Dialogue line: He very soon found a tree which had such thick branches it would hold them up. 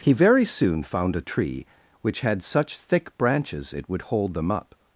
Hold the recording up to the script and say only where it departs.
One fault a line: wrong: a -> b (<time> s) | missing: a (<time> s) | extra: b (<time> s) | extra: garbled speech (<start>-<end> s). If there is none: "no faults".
no faults